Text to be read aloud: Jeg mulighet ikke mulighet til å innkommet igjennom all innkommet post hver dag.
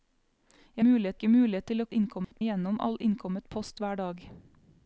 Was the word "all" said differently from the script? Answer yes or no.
no